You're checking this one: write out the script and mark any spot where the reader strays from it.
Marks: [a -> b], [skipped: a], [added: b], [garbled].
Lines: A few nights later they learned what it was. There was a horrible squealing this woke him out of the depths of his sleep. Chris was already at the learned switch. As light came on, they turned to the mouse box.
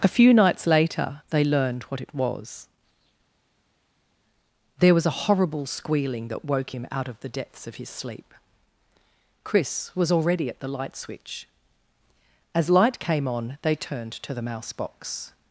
A few nights later they learned what it was. There was a horrible squealing [this -> that] woke him out of the depths of his sleep. Chris was already at the [learned -> light] switch. As light came on, they turned to the mouse box.